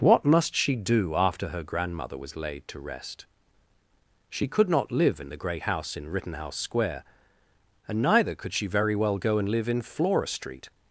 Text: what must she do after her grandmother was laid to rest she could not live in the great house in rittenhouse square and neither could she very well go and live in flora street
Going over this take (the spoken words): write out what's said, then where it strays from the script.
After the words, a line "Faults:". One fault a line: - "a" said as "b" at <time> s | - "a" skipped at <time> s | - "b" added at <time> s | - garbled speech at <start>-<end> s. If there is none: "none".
what must she do after her grandmother was laid to rest she could not live in the great house in rittenhouse square and neither could she very well go and live in flora street
Faults:
none